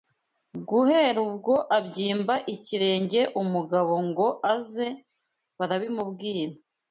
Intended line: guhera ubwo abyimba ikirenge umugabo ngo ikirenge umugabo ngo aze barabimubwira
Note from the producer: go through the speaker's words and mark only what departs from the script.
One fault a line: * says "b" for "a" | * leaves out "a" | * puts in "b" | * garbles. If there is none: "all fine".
* leaves out "ikirenge umugabo ngo"